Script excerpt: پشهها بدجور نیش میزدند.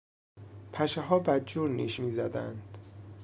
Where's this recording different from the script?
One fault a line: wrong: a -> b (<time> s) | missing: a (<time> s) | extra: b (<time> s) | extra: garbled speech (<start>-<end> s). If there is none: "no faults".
no faults